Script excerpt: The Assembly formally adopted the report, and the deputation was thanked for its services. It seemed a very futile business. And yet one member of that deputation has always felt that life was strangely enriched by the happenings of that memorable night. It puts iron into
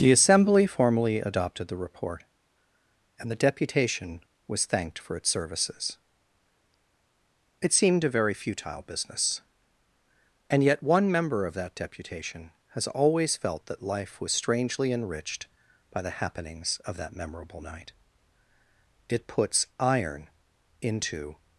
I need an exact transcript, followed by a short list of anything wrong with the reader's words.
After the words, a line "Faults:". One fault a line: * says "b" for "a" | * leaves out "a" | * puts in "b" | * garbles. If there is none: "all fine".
The Assembly formally adopted the report, and the deputation was thanked for its services. It seemed a very futile business. And yet one member of that deputation has always felt that life was strangely enriched by the happenings of that memorable night. It puts iron into
Faults:
all fine